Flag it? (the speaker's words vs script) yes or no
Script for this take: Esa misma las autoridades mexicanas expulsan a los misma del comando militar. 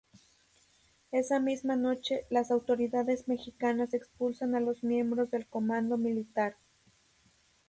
yes